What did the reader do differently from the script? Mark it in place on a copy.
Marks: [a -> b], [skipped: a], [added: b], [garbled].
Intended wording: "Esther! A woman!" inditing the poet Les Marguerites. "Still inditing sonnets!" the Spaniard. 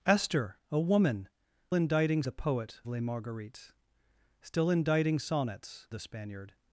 "Esther! A woman!" inditing the poet Les Marguerites. "Still inditing sonnets!" the Spaniard.